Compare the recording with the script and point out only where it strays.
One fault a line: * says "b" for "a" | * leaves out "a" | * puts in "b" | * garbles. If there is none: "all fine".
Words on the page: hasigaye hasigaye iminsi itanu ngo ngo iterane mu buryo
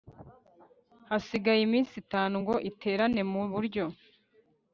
* leaves out "hasigaye"
* leaves out "ngo"